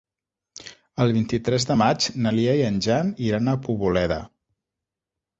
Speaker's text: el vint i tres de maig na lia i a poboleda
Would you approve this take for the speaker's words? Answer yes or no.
no